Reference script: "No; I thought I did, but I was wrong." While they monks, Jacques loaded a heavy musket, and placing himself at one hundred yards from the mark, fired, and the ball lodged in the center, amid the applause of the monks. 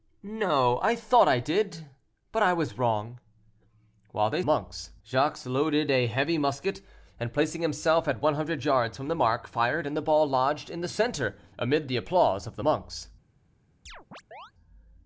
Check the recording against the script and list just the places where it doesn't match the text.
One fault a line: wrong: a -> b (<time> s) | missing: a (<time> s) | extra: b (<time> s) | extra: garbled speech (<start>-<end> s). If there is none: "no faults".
no faults